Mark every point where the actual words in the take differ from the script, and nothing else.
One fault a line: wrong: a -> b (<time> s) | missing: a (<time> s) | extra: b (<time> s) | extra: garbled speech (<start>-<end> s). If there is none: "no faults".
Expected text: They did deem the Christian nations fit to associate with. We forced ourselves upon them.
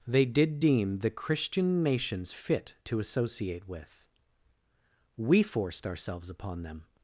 no faults